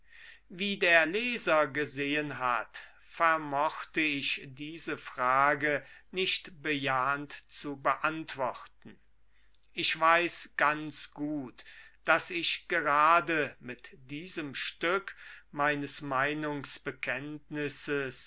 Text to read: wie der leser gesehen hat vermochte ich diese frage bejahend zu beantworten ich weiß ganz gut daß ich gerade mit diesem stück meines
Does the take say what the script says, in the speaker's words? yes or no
no